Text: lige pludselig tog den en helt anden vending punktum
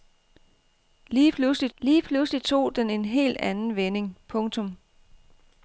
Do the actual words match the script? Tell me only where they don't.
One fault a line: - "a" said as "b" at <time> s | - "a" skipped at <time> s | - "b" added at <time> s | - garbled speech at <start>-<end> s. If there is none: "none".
- "lige pludselig" added at 1.8 s